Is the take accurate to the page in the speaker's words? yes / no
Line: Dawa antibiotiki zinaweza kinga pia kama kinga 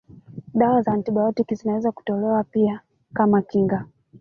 no